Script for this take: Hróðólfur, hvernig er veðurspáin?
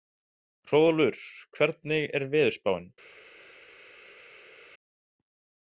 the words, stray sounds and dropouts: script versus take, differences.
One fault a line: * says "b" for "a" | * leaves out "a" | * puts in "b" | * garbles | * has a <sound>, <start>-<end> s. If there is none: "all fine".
all fine